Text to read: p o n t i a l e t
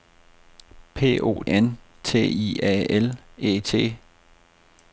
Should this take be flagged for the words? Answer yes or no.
no